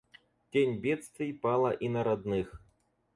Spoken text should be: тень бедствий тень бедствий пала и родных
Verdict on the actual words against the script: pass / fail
fail